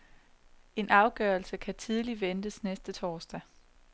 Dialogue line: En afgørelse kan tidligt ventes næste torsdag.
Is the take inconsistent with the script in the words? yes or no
no